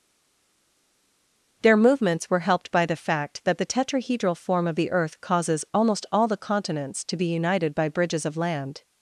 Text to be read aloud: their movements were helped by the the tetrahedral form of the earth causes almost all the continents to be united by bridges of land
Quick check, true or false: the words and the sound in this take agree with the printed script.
false